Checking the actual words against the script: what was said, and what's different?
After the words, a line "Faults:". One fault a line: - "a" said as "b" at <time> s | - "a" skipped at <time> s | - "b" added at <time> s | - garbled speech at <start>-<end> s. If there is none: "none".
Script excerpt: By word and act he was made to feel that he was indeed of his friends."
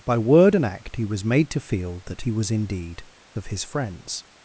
By word and act he was made to feel that he was indeed of his friends."
Faults:
none